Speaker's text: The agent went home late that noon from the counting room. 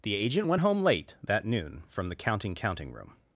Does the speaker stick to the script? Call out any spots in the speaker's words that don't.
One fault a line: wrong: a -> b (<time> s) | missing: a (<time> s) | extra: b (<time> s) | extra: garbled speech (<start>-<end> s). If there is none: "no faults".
extra: counting (2.5 s)